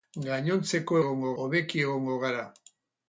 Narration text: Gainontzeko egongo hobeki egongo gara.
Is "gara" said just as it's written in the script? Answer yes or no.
yes